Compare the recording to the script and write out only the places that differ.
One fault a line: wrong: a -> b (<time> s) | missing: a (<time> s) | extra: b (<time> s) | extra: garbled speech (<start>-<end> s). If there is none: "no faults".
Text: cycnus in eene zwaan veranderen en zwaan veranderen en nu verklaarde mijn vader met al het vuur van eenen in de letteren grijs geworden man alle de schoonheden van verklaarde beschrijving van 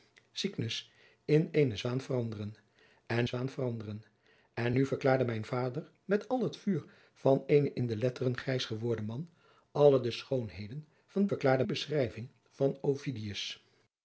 no faults